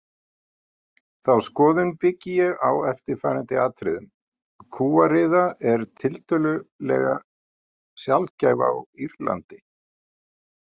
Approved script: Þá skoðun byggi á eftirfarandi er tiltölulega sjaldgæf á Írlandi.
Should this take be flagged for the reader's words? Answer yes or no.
yes